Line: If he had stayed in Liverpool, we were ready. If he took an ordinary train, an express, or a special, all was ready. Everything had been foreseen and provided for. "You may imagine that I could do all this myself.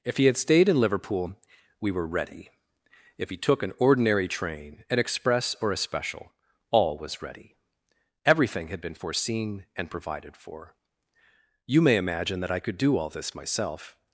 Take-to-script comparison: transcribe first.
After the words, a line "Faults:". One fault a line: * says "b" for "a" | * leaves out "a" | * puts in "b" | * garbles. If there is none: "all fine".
If he had stayed in Liverpool, we were ready. If he took an ordinary train, an express, or a special, all was ready. Everything had been foreseen and provided for. "You may imagine that I could do all this myself.
Faults:
all fine